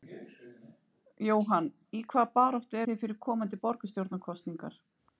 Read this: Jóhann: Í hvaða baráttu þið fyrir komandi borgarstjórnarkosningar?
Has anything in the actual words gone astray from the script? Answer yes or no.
no